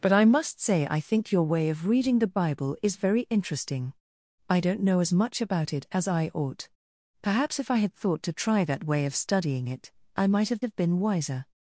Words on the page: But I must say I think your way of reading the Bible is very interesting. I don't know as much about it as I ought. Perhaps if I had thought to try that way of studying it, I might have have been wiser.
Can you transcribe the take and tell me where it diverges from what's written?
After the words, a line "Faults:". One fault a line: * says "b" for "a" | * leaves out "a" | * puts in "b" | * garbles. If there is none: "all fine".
But I must say I think your way of reading the Bible is very interesting. I don't know as much about it as I ought. Perhaps if I had thought to try that way of studying it, I might have have been wiser.
Faults:
all fine